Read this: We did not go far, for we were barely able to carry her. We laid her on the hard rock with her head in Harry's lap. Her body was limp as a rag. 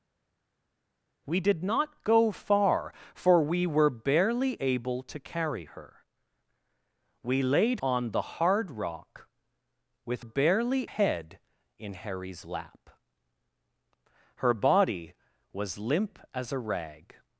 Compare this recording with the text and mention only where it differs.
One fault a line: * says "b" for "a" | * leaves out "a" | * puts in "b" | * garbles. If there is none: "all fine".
* leaves out "her"
* says "barely" for "her"